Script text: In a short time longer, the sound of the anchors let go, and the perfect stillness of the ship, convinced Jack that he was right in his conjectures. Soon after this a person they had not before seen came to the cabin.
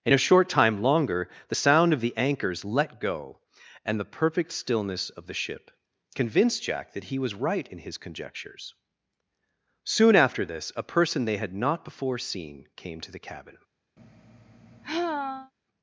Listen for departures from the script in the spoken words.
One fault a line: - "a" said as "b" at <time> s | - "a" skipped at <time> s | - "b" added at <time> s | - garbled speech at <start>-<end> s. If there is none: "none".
none